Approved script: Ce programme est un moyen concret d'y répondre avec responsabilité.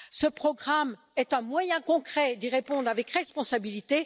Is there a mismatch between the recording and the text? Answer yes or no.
no